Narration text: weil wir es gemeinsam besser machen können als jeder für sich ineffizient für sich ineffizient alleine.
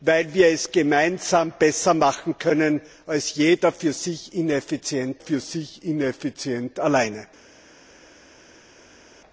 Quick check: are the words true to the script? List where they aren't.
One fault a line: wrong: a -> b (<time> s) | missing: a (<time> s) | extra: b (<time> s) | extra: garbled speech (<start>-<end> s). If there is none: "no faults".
no faults